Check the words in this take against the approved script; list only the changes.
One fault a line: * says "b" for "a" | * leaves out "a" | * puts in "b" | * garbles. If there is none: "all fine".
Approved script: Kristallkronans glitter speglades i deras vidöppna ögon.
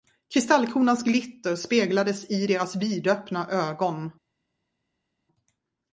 all fine